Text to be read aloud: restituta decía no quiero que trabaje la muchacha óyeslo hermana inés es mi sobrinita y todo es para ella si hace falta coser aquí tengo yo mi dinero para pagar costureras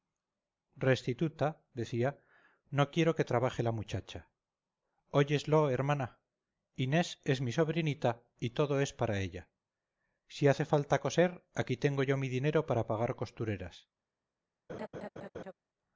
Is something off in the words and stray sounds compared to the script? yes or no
yes